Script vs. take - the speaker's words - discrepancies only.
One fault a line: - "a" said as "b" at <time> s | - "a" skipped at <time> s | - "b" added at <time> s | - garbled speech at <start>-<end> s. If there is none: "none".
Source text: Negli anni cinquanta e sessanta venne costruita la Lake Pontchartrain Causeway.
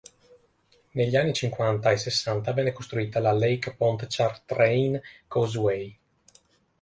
none